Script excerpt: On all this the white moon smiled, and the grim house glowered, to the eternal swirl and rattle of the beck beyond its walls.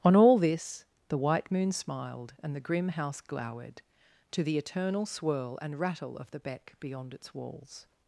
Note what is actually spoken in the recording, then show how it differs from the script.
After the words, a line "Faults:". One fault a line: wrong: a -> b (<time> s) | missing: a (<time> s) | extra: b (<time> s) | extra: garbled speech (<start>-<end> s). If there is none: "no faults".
On all this the white moon smiled, and the grim house glowered, to the eternal swirl and rattle of the beck beyond its walls.
Faults:
no faults